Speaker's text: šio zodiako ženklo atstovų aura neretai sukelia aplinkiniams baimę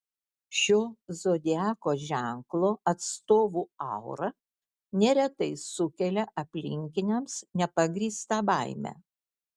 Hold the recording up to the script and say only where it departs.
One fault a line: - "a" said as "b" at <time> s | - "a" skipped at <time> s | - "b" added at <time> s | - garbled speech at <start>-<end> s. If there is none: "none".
- "nepagrįstą" added at 7.6 s